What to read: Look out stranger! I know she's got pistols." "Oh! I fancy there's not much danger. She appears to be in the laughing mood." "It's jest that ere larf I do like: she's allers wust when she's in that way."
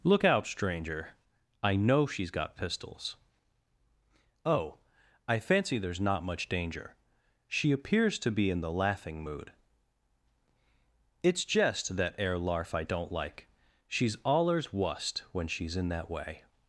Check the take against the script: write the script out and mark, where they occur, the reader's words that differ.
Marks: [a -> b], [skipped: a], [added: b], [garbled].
Look out stranger! I know she's got pistols." "Oh! I fancy there's not much danger. She appears to be in the laughing mood." "It's jest that ere larf I [do -> don't] like: she's allers wust when she's in that way."